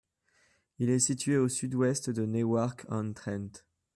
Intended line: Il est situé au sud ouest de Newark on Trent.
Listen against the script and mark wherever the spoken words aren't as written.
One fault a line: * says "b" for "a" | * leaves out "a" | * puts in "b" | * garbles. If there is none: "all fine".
all fine